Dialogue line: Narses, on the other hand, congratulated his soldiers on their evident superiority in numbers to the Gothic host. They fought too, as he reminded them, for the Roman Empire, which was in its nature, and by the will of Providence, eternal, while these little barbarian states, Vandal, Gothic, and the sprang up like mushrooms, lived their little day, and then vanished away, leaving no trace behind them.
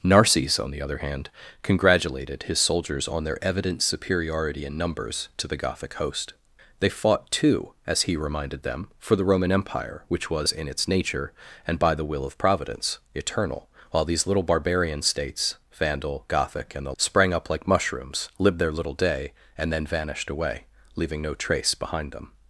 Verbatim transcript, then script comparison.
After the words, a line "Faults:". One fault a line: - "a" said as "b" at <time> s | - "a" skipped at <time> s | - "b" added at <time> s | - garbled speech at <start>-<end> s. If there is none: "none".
Narses, on the other hand, congratulated his soldiers on their evident superiority in numbers to the Gothic host. They fought too, as he reminded them, for the Roman Empire, which was in its nature, and by the will of Providence, eternal, while these little barbarian states, Vandal, Gothic, and the sprang up like mushrooms, lived their little day, and then vanished away, leaving no trace behind them.
Faults:
none